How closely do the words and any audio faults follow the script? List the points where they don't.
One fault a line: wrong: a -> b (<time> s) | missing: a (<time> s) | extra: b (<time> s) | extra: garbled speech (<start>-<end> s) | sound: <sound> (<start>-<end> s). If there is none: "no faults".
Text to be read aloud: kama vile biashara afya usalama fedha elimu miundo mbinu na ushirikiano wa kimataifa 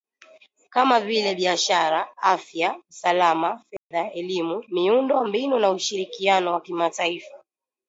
sound: dropout (3.8-3.9 s)